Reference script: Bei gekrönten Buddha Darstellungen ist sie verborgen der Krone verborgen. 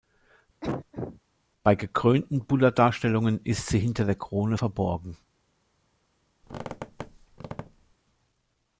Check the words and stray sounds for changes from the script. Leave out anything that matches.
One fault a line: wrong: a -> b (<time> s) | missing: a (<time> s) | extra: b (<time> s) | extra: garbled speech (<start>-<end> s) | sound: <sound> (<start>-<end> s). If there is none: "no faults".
sound: cough (0.6-1.2 s)
wrong: verborgen -> hinter (3.8 s)
sound: squeak (6.4-7.9 s)